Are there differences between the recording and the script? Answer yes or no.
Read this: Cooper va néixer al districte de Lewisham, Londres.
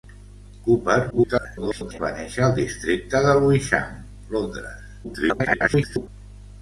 yes